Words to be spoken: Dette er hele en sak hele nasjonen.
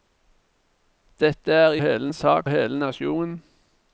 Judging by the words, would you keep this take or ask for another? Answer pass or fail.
pass